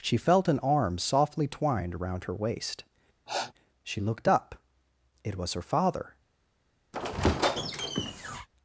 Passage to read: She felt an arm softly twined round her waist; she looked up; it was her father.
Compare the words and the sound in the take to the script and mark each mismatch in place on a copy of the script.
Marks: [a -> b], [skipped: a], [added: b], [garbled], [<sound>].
She felt an arm softly twined [round -> around] her waist; [sniff] she looked up; it was her father. [squeak]